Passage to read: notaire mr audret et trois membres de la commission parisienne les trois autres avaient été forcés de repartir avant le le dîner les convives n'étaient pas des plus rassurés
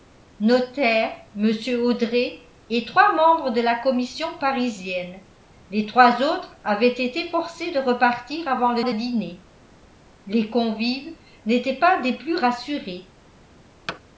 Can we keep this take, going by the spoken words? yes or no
yes